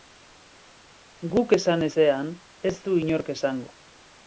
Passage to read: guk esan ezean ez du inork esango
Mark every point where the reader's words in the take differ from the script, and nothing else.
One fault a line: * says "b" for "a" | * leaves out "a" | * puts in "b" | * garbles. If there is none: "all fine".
all fine